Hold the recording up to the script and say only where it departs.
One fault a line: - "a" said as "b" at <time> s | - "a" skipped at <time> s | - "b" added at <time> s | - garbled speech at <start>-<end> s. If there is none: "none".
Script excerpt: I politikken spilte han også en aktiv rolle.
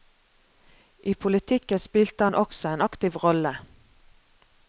none